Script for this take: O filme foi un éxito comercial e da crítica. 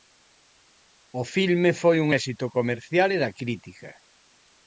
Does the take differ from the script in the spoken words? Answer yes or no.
no